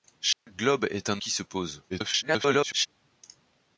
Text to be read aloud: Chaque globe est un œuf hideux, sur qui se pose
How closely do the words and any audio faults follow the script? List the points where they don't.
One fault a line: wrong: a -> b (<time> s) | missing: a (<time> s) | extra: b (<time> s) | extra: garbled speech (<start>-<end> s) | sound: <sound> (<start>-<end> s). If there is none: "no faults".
sound: dropout (0.3-0.5 s)
missing: œuf hideux sur (1.2 s)
extra: garbled speech (1.9-2.9 s)